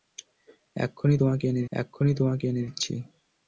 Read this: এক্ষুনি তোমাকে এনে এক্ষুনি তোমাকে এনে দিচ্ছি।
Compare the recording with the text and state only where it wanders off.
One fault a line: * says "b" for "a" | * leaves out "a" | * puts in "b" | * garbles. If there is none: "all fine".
all fine